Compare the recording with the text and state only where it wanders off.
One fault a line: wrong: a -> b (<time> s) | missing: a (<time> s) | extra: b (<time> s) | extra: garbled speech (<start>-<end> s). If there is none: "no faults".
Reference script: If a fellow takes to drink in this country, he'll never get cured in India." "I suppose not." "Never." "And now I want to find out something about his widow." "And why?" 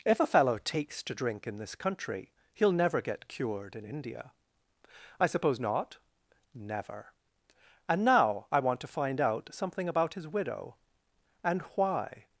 no faults